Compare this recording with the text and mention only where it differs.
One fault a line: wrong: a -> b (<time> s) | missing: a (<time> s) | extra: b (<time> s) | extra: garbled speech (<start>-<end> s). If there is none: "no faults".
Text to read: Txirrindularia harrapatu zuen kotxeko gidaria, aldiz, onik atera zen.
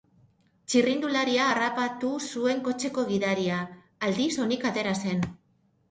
no faults